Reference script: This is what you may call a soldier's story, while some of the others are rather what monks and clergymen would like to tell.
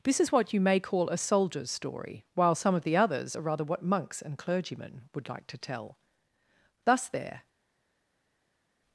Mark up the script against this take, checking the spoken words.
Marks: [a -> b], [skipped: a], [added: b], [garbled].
This is what you may call a soldier's story, while some of the others are rather what monks and clergymen would like to tell. [added: Thus there]